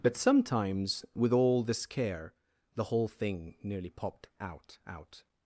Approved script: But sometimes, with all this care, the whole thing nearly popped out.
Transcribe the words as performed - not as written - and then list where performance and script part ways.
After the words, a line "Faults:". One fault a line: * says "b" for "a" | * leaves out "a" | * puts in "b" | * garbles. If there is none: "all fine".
But sometimes, with all this care, the whole thing nearly popped out out.
Faults:
* puts in "out"